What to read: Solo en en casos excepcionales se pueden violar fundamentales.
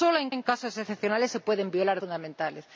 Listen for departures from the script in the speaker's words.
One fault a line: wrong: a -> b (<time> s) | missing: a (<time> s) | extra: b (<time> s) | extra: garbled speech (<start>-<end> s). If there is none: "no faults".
no faults